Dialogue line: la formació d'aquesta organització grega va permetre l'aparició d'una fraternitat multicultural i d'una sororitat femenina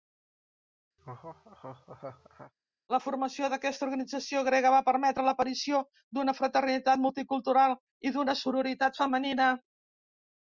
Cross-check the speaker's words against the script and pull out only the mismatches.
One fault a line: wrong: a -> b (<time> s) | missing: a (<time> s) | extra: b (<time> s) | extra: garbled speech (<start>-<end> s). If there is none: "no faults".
no faults